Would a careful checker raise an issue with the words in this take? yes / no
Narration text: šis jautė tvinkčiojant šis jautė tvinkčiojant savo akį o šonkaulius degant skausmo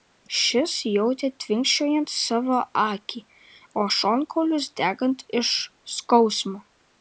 yes